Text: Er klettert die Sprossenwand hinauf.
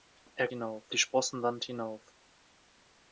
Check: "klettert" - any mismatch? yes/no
yes